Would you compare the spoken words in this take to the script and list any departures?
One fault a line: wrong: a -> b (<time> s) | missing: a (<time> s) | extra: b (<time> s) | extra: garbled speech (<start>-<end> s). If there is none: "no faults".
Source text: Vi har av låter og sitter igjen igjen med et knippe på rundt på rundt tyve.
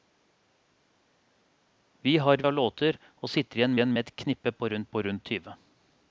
no faults